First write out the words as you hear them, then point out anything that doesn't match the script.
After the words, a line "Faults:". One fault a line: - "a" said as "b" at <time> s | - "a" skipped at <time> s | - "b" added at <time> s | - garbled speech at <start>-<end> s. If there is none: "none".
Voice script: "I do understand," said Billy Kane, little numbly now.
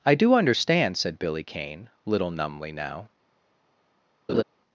"I do understand," said Billy Kane, little numbly now.
Faults:
none